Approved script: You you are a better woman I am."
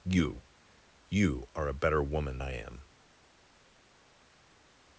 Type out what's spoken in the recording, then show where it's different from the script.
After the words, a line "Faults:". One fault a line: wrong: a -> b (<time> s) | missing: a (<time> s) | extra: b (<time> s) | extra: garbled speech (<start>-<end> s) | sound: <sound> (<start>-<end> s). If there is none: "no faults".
You you are a better woman I am."
Faults:
no faults